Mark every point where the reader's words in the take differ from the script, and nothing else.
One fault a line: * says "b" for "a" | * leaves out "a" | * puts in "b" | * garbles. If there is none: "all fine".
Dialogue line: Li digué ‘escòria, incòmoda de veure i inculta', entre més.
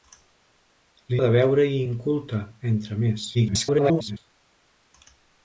* leaves out "digué escòria incòmoda"
* garbles